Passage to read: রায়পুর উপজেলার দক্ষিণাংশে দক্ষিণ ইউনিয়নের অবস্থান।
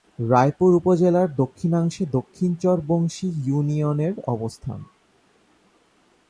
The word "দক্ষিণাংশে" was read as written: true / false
true